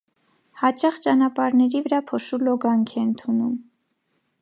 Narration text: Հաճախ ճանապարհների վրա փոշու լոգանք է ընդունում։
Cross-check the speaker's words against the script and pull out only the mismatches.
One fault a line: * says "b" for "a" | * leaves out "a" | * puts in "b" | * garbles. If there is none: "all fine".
all fine